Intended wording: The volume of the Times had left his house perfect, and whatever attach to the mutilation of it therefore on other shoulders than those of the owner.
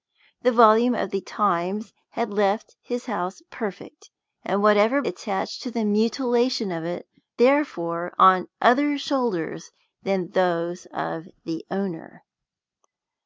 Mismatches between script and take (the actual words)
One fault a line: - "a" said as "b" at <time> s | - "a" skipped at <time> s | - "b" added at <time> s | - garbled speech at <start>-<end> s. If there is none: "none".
none